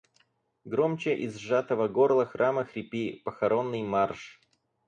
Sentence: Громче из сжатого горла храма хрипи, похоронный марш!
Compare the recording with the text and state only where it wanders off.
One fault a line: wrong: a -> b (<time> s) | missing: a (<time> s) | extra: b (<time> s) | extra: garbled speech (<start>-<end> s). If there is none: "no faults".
no faults